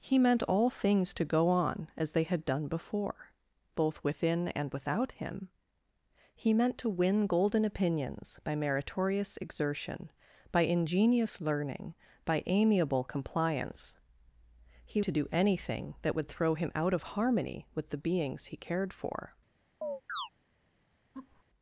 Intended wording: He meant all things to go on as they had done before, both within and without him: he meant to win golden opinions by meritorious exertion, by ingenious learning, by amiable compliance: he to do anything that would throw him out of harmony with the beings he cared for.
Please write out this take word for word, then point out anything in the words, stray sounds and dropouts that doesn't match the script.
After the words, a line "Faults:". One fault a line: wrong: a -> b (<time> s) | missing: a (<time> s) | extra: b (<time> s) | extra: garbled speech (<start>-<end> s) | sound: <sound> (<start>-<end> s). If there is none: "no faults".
He meant all things to go on as they had done before, both within and without him: he meant to win golden opinions by meritorious exertion, by ingenious learning, by amiable compliance: he to do anything that would throw him out of harmony with the beings he cared for.
Faults:
sound: chirp (19.8-20.3 s)
sound: laugh (21.1-21.4 s)